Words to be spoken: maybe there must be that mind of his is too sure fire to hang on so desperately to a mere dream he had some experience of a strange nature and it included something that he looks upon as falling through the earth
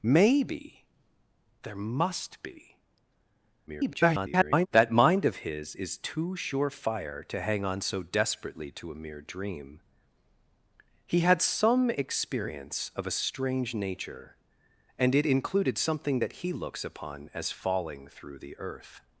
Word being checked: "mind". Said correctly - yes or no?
yes